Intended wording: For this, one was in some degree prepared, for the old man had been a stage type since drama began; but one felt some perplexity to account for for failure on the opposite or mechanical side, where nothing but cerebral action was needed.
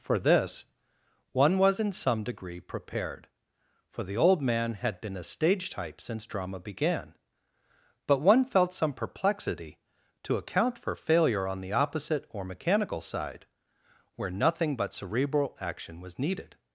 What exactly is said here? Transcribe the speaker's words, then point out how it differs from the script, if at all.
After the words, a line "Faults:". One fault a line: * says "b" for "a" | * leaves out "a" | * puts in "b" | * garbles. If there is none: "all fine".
For this, one was in some degree prepared, for the old man had been a stage type since drama began; but one felt some perplexity to account for failure on the opposite or mechanical side, where nothing but cerebral action was needed.
Faults:
* leaves out "for"